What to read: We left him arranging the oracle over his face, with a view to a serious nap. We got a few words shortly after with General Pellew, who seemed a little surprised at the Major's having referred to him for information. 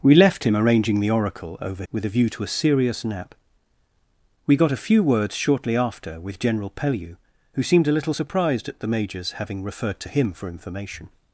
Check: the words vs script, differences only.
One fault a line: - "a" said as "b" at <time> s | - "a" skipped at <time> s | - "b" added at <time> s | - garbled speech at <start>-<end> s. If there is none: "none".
- "his face" skipped at 1.8 s